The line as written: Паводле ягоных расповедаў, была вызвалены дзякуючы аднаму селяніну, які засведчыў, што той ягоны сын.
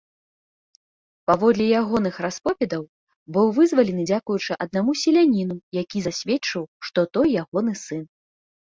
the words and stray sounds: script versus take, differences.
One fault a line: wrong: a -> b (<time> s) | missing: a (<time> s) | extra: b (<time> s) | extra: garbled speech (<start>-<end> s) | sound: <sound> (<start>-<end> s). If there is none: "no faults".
wrong: была -> быў (3.4 s)